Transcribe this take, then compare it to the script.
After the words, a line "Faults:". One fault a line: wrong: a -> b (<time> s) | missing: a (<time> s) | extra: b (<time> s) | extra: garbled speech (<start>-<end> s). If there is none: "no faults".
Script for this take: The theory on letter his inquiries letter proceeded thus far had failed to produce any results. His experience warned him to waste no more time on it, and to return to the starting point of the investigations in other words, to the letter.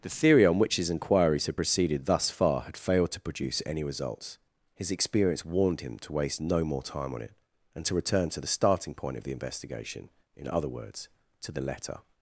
The theory on which his inquiries had proceeded thus far had failed to produce any results. His experience warned him to waste no more time on it, and to return to the starting point of the investigation in other words, to the letter.
Faults:
wrong: letter -> which (0.6 s)
wrong: letter -> had (1.4 s)
wrong: investigations -> investigation (9.3 s)